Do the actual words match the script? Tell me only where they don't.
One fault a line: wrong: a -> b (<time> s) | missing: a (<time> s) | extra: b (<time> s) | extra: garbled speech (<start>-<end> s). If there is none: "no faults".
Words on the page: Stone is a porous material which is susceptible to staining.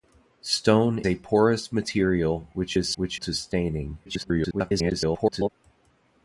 missing: is (1.0 s)
wrong: susceptible -> which (2.9 s)
extra: garbled speech (4.1-5.5 s)